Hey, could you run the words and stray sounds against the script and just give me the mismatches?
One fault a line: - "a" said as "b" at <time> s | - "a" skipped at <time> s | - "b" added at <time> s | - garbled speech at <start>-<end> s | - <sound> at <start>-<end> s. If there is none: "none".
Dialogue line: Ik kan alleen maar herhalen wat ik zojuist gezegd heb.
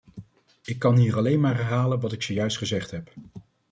- "hier" added at 1.0 s